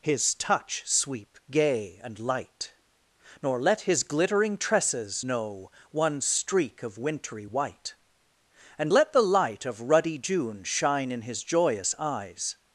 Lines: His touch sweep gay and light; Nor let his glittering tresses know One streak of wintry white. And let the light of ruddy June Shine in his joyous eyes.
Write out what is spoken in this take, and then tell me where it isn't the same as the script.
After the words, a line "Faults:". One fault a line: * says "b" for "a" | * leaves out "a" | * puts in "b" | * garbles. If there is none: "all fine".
His touch sweep gay and light; Nor let his glittering tresses know One streak of wintry white. And let the light of ruddy June Shine in his joyous eyes.
Faults:
all fine